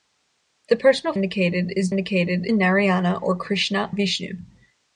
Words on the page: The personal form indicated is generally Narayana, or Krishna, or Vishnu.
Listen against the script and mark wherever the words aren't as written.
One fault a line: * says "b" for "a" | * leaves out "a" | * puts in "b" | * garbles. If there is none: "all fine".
* leaves out "form"
* says "indicated" for "generally"
* leaves out "or"